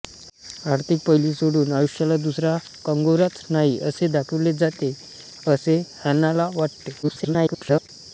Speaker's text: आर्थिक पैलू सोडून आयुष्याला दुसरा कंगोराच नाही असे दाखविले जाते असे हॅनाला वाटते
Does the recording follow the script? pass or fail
fail